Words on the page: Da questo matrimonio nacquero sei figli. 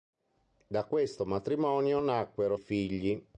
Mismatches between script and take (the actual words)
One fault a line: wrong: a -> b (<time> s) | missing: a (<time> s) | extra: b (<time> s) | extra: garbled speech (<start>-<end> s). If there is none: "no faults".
missing: sei (2.6 s)